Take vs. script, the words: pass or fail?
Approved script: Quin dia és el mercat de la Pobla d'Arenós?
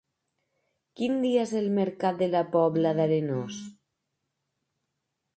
pass